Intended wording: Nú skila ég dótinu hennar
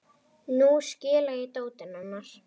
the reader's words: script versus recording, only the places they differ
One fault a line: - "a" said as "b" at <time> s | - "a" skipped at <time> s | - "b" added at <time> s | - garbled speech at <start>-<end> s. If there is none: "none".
none